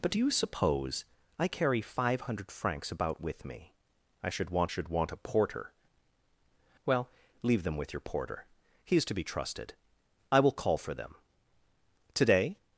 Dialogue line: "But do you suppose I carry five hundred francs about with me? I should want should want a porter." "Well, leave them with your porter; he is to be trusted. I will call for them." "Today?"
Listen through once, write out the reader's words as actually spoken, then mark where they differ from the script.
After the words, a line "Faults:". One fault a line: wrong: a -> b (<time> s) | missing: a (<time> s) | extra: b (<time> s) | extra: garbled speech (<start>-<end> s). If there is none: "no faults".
"But do you suppose I carry five hundred francs about with me? I should want should want a porter." "Well, leave them with your porter; he is to be trusted. I will call for them." "Today?"
Faults:
no faults